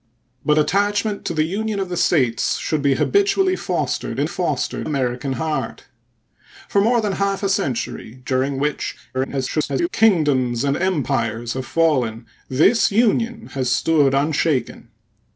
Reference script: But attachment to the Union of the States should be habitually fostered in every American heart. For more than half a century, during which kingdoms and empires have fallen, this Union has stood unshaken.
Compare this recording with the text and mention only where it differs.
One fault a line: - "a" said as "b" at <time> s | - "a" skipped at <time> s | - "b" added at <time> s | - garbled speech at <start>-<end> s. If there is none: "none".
- "every" said as "fostered" at 4.2 s
- garbled speech at 9.1-9.9 s